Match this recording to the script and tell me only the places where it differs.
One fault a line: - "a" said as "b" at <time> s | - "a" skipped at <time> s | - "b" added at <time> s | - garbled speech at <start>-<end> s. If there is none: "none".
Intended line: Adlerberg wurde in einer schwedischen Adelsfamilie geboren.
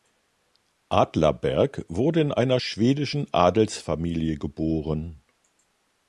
none